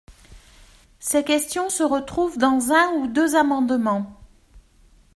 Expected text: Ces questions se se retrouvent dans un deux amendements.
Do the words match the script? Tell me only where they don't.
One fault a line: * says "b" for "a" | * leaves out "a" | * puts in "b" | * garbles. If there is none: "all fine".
* leaves out "se"
* puts in "ou"